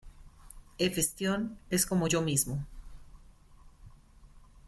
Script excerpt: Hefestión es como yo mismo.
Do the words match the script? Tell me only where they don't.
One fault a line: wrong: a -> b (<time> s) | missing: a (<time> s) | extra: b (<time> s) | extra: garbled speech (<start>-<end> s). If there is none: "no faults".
no faults